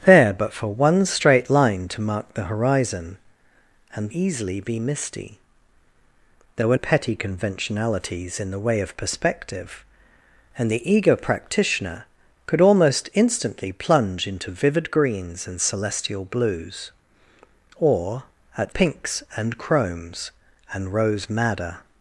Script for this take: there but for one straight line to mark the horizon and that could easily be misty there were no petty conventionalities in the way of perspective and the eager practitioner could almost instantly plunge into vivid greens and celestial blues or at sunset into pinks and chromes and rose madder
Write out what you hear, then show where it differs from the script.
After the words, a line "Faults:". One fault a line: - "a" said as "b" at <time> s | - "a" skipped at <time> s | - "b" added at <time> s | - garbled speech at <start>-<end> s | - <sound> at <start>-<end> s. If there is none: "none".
there but for one straight line to mark the horizon and easily be misty there were petty conventionalities in the way of perspective and the eager practitioner could almost instantly plunge into vivid greens and celestial blues or at pinks and chromes and rose madder
Faults:
- "that could" skipped at 4.1 s
- "no" skipped at 6.8 s
- "sunset into" skipped at 18.7 s